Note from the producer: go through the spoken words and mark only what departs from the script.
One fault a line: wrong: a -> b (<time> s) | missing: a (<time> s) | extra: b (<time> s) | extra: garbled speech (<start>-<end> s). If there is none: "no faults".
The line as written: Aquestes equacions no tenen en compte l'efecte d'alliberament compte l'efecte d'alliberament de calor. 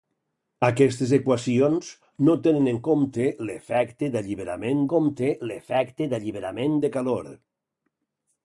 no faults